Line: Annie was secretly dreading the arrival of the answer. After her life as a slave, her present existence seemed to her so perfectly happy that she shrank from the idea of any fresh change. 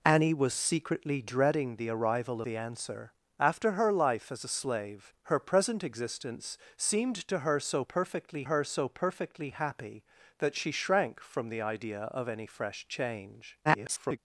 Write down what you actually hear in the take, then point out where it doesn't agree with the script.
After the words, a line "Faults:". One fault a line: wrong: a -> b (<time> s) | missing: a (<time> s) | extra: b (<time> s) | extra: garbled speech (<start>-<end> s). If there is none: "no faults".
Annie was secretly dreading the arrival the answer. After her life as a slave, her present existence seemed to her so perfectly her so perfectly happy that she shrank from the idea of any fresh change. [garbled]
Faults:
missing: of (2.4 s)
extra: her so perfectly (8.4 s)
extra: garbled speech (13.6-14.2 s)